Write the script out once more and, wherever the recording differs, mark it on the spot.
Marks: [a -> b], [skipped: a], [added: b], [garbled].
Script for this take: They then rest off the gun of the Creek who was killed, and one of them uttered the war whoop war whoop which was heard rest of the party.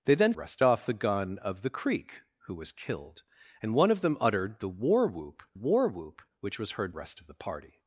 They then rest off the gun of the Creek who was killed, and one of them uttered the war whoop war whoop which was heard rest of the party.